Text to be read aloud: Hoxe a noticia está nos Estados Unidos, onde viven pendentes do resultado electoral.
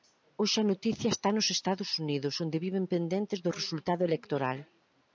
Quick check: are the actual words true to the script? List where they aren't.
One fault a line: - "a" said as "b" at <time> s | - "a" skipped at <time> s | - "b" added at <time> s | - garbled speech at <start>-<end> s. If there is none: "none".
none